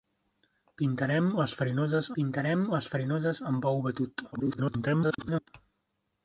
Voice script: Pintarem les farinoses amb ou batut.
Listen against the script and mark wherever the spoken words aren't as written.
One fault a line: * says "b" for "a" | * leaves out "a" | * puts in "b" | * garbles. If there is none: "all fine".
* puts in "pintarem les farinoses"
* garbles